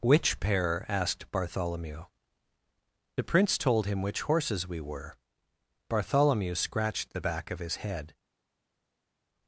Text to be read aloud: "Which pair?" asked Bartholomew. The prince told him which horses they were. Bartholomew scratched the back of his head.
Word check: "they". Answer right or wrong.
wrong